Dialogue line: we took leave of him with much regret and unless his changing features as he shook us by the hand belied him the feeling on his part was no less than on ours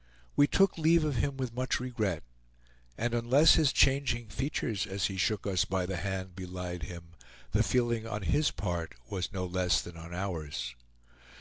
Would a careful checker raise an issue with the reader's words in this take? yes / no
no